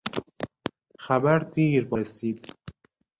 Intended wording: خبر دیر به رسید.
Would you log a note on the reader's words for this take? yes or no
no